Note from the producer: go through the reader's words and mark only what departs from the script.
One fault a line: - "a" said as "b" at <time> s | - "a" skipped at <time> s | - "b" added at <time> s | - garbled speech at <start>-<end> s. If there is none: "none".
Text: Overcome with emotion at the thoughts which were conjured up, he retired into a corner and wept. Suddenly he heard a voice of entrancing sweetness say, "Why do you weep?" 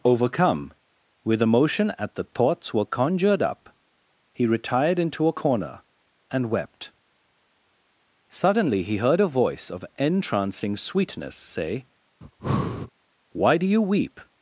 - "which" skipped at 2.7 s